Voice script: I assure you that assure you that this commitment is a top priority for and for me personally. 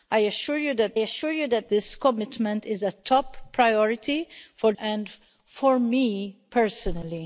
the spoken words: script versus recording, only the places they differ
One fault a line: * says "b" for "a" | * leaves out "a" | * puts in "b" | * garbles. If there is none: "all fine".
all fine